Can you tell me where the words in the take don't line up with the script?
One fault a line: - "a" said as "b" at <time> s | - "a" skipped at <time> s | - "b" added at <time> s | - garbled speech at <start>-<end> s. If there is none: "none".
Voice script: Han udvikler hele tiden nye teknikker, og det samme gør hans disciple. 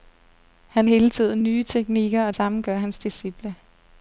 - "udvikler" skipped at 0.9 s
- "det" skipped at 2.3 s